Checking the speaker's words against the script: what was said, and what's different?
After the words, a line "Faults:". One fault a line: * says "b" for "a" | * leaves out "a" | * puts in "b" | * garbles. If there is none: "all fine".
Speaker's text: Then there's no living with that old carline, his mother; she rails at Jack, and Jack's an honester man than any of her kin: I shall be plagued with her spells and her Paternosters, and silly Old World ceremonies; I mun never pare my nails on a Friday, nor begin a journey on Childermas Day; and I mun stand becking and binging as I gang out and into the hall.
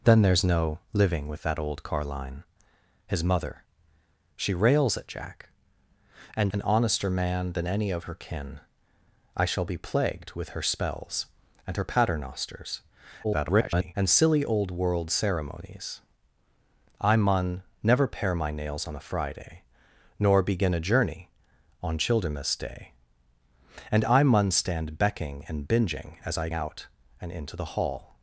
Then there's no living with that old carline, his mother; she rails at Jack, and An honester man than any of her kin: I shall be plagued with her spells and her Paternosters, [garbled] and silly Old World ceremonies; I mun never pare my nails on a Friday, nor begin a journey on Childermas Day; and I mun stand becking and binging as I out and into the hall.
Faults:
* leaves out "Jack's"
* garbles
* leaves out "gang"